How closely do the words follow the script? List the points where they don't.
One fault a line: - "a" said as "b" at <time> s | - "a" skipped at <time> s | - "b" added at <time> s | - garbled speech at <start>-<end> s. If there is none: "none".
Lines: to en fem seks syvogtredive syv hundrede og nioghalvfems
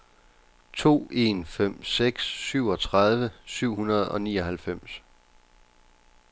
none